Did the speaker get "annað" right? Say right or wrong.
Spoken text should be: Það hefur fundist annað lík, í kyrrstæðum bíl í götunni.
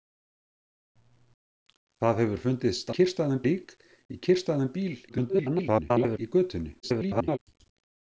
wrong